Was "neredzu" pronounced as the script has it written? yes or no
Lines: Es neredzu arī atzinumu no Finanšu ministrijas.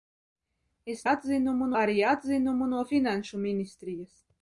no